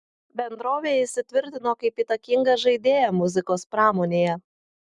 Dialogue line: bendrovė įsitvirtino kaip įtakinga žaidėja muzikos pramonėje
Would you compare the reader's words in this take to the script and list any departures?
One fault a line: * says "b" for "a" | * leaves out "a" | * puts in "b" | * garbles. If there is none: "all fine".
all fine